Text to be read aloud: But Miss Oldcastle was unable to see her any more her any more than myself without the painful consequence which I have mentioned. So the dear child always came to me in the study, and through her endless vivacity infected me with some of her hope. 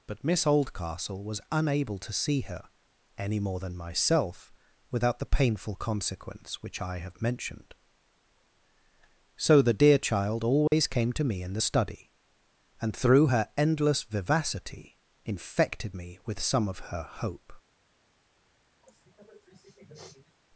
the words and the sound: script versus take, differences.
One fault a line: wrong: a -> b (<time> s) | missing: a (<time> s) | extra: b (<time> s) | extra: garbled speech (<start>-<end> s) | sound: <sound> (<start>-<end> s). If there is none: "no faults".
missing: her any more (3.6 s)
sound: dropout (10.7-10.7 s)
sound: sniff (18.8-20.4 s)